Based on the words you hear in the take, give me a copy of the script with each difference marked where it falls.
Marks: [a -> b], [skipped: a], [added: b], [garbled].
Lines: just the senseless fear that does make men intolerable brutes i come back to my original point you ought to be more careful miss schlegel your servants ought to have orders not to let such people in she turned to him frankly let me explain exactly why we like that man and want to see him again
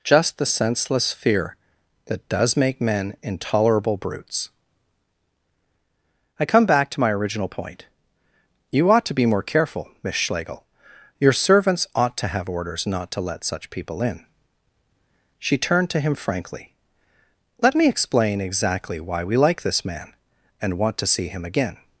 just the senseless fear that does make men intolerable brutes i come back to my original point you ought to be more careful miss schlegel your servants ought to have orders not to let such people in she turned to him frankly let me explain exactly why we like [that -> this] man and want to see him again